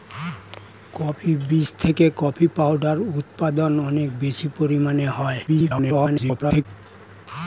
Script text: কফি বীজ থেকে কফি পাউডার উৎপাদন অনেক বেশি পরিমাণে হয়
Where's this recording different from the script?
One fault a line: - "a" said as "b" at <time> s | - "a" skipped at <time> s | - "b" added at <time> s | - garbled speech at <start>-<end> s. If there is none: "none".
- garbled speech at 5.5-6.7 s